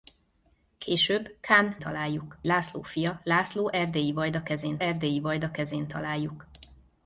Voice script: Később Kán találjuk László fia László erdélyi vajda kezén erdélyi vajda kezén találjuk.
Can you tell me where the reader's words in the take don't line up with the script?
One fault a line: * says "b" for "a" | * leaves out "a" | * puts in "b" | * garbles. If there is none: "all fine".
all fine